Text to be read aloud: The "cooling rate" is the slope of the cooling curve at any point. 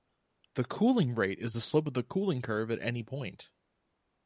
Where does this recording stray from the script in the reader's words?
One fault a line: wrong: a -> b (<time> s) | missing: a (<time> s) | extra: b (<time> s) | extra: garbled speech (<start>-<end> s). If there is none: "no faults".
no faults